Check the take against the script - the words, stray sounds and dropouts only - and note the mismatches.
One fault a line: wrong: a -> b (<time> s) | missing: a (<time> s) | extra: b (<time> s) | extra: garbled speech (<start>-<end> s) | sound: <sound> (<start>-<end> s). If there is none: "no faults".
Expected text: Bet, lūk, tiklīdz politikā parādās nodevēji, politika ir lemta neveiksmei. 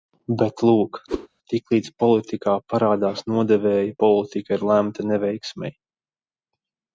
sound: whoosh (1.1-1.3 s)